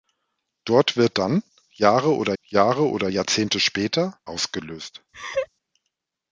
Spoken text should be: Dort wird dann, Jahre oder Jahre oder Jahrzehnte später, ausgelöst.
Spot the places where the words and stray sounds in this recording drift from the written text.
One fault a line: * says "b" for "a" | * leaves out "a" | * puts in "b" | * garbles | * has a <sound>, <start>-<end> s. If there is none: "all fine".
* has a laugh, 5.1-5.5 s